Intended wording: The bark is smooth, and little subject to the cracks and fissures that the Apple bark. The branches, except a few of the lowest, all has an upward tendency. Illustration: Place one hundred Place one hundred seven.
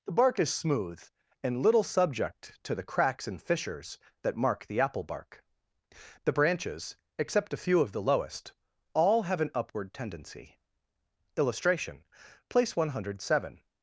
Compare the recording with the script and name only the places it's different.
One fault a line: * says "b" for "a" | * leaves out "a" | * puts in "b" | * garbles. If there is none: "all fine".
* puts in "mark"
* says "have" for "has"
* leaves out "Place one hundred"